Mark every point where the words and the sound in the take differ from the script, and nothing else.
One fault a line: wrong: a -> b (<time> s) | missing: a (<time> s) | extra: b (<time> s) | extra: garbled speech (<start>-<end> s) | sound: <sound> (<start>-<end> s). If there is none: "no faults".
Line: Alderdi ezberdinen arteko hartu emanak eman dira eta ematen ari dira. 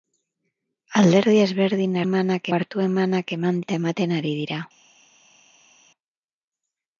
wrong: arteko -> emanak (2.0 s)
missing: dira (3.6 s)